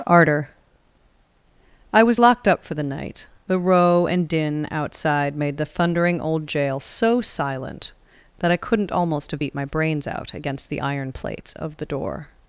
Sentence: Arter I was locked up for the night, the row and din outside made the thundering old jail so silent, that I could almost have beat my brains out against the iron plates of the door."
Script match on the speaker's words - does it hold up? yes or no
no